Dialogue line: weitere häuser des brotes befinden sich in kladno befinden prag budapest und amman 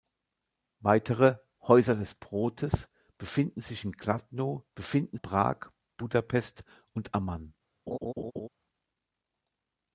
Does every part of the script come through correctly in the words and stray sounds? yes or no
no